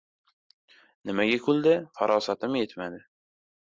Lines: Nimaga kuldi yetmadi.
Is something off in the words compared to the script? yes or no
yes